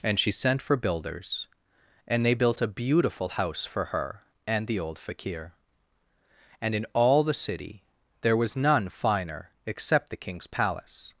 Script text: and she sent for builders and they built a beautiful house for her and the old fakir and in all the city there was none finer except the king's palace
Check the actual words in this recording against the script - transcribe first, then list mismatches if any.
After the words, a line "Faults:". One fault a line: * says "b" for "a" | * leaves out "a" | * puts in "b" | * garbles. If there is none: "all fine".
and she sent for builders and they built a beautiful house for her and the old fakir and in all the city there was none finer except the king's palace
Faults:
all fine